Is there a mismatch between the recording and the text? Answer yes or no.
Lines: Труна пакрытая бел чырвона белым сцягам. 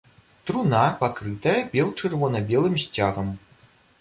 no